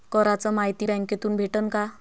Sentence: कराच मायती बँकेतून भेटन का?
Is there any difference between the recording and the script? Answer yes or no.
no